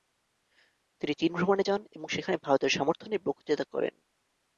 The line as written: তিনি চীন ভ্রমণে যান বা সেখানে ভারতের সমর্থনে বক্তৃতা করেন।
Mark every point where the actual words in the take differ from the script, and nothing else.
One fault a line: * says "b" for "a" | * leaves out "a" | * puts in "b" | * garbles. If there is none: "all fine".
* says "এবং" for "বা"